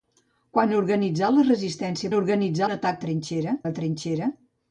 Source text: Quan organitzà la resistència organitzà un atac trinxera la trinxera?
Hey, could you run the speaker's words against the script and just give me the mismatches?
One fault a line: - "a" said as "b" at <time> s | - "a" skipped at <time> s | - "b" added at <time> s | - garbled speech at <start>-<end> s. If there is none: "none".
none